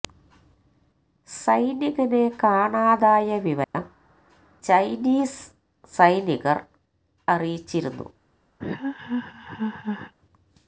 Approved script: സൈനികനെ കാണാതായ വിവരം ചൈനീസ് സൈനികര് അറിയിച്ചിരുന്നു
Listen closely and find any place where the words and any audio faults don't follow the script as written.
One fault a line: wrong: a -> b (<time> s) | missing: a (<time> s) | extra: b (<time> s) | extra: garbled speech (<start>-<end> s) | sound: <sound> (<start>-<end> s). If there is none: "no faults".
sound: dropout (3.6-3.7 s)
sound: laugh (8.6-10.1 s)